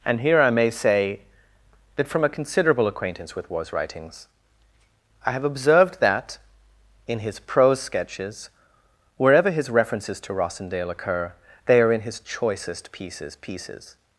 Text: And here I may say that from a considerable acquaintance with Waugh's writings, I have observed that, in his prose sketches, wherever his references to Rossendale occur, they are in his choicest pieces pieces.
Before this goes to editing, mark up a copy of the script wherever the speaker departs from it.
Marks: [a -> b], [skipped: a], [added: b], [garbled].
And here I may say that from a considerable acquaintance with Waugh's writings, I have observed that, in his prose sketches, wherever his references to Rossendale occur, they are in his choicest pieces pieces.